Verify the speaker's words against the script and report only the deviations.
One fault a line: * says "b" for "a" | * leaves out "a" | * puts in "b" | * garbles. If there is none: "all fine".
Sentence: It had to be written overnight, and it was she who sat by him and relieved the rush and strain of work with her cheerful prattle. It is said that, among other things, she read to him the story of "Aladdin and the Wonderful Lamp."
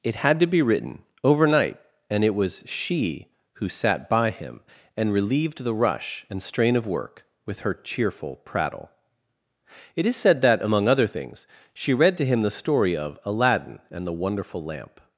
all fine